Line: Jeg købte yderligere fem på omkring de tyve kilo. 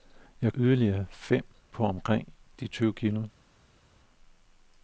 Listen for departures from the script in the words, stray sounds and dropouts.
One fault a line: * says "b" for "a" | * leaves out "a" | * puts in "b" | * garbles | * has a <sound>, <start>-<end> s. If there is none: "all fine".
* leaves out "købte"